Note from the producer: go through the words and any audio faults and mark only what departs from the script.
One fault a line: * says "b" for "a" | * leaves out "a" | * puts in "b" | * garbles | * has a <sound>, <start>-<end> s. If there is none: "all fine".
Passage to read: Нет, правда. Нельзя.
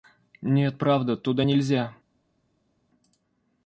* puts in "Туда"